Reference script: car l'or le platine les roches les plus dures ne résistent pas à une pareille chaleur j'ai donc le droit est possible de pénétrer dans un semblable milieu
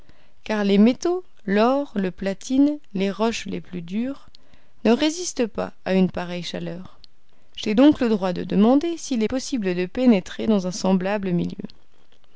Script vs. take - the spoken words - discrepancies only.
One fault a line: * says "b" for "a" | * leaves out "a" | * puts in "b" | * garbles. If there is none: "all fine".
* puts in "les métaux"
* puts in "de demander s'il"